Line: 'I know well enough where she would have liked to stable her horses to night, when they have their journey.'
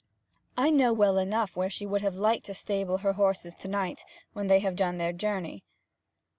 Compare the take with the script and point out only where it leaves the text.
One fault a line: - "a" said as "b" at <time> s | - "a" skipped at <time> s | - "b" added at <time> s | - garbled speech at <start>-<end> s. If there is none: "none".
- "done" added at 4.8 s